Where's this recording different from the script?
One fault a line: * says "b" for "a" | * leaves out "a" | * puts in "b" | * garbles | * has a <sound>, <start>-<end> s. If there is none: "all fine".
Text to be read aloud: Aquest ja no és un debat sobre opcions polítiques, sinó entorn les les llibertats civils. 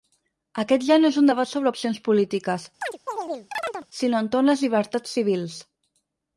* has a chirp, 2.8-3.9 s
* leaves out "les"